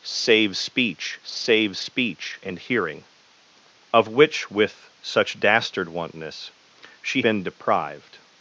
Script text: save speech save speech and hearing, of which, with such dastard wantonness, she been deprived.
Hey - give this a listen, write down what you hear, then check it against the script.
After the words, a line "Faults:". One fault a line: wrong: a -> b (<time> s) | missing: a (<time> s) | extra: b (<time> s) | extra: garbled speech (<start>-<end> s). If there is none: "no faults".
save speech save speech and hearing, of which, with such dastard wantonness, she been deprived.
Faults:
no faults